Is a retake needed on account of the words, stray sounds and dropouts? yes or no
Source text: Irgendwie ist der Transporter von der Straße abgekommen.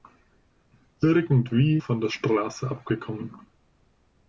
yes